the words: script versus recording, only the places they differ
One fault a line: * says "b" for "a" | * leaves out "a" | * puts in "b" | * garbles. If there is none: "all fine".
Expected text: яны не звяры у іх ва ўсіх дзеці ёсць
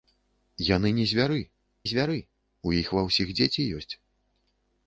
* puts in "звяры"